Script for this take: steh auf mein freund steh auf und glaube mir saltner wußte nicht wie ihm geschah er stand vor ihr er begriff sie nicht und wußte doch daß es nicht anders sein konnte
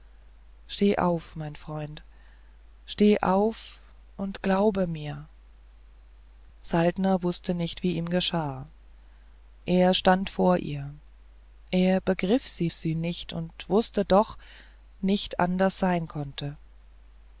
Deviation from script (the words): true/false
true